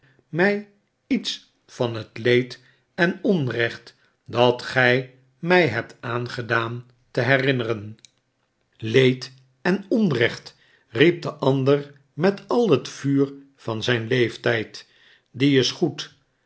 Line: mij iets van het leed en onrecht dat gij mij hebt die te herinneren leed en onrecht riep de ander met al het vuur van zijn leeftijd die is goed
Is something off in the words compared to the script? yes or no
yes